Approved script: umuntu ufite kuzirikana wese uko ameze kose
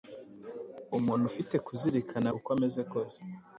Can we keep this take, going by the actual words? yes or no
no